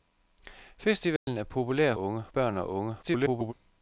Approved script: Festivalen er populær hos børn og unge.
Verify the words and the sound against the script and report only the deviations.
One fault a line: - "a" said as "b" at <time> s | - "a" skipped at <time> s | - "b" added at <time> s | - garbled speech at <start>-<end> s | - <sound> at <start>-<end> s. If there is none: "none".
- dropout at 1.2-1.3 s
- "hos" said as "unge" at 2.0 s
- garbled speech at 3.0-3.5 s